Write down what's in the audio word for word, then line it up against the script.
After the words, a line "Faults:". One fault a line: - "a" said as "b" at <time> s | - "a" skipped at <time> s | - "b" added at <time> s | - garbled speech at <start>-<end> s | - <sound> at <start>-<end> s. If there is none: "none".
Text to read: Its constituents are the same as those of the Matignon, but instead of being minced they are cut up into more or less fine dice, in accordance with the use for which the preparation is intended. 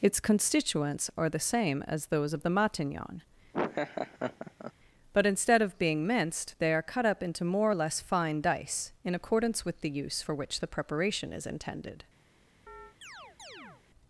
Its constituents are the same as those of the Matignon, but instead of being minced they are cut up into more or less fine dice, in accordance with the use for which the preparation is intended.
Faults:
- laugh at 3.5-4.7 s
- chirp at 12.7-13.8 s